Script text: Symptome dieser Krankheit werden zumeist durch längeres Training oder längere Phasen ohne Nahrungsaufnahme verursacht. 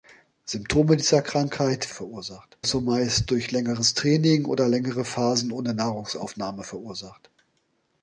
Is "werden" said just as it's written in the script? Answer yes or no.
no